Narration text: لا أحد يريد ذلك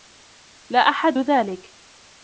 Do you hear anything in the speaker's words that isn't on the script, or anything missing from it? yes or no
yes